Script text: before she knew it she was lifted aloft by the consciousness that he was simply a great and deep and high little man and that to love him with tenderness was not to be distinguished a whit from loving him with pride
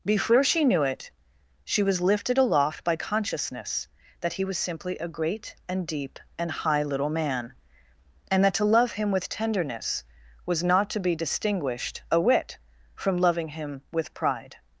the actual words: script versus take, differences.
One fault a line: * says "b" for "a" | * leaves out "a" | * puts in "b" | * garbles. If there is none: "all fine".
* leaves out "the"